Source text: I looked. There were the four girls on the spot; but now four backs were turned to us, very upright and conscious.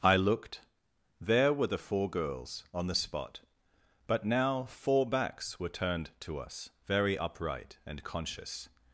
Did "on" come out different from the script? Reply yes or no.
no